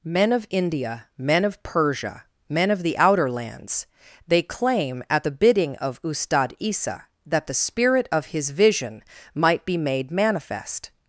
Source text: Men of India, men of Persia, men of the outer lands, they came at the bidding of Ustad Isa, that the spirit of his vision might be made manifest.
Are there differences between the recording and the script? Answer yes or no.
yes